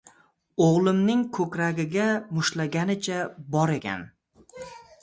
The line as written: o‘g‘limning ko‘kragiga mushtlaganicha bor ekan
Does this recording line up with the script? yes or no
yes